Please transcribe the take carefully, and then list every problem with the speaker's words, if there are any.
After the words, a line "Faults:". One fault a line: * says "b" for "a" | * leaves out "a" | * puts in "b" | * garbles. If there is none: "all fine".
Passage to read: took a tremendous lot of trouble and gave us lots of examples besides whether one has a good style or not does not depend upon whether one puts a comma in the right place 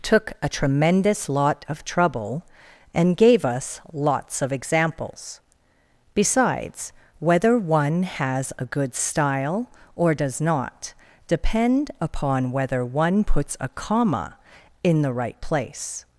took a tremendous lot of trouble and gave us lots of examples besides whether one has a good style or does not depend upon whether one puts a comma in the right place
Faults:
* leaves out "not"